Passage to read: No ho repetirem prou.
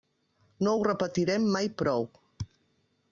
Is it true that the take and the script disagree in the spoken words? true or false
true